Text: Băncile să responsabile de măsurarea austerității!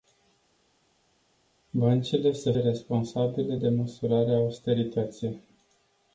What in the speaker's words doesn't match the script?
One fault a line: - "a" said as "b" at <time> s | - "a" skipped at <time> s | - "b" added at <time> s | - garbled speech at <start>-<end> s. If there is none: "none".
none